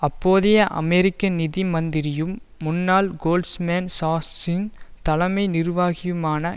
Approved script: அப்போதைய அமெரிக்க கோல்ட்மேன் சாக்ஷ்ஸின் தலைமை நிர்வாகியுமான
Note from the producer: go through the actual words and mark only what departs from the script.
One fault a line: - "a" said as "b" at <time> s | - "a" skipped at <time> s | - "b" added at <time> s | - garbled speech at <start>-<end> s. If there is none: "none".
- "நிதி மந்திரியும் முன்னாள்" added at 1.3 s